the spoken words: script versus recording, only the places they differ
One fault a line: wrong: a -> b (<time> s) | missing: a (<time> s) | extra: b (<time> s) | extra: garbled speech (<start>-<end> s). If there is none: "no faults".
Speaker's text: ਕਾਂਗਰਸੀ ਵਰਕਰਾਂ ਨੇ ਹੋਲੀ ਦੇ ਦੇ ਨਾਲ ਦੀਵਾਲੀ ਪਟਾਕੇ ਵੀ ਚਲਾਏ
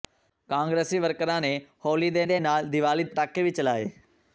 no faults